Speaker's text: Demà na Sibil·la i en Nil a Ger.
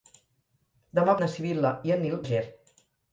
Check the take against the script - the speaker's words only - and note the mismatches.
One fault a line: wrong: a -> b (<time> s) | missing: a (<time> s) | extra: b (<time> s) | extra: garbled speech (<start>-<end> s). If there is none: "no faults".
no faults